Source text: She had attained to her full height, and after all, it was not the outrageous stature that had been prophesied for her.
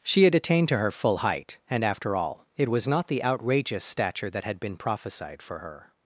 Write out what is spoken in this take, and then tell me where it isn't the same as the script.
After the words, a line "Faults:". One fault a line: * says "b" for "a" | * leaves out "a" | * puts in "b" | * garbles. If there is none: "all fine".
She had attained to her full height, and after all, it was not the outrageous stature that had been prophesied for her.
Faults:
all fine